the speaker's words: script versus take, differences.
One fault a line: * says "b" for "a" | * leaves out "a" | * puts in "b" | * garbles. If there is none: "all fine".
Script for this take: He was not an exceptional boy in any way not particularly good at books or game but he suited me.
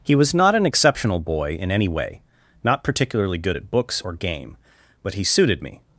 all fine